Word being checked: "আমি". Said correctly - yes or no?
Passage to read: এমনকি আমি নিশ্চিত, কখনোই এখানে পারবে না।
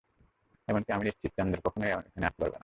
yes